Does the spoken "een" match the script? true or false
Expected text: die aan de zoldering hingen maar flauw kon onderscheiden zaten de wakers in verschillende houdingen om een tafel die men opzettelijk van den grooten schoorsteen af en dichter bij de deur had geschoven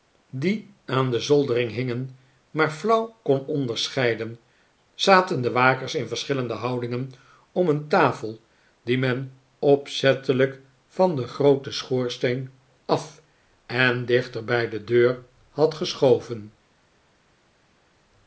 true